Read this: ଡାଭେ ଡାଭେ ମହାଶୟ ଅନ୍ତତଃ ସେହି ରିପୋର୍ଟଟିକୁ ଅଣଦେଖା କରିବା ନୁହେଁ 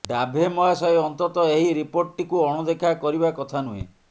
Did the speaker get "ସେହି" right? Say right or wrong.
wrong